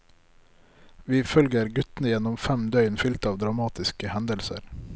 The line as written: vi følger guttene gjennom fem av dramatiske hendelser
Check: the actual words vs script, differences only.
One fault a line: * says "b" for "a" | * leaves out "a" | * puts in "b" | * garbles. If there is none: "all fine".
* puts in "døgn fylt"